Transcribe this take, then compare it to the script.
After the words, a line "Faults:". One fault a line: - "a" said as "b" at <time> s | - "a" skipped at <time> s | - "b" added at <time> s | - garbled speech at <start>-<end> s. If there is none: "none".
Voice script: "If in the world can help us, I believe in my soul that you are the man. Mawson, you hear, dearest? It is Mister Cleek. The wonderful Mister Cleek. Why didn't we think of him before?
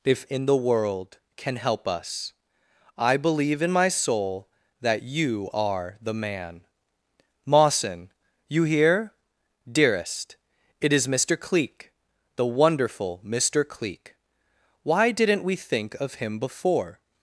"If in the world can help us, I believe in my soul that you are the man. Mawson, you hear, dearest? It is Mister Cleek. The wonderful Mister Cleek. Why didn't we think of him before?
Faults:
none